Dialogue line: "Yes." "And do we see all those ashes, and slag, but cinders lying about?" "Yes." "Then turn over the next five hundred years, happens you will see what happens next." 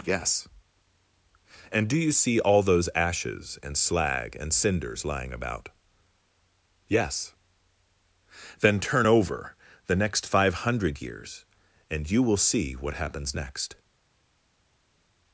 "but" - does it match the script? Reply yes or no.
no